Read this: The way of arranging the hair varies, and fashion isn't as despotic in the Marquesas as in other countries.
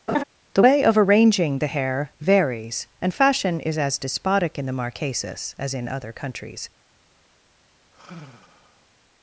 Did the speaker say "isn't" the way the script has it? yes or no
no